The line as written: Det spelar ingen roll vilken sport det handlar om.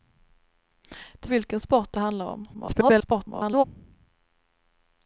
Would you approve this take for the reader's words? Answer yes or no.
no